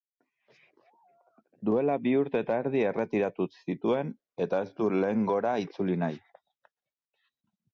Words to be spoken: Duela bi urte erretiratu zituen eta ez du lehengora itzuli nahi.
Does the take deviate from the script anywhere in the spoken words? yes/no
yes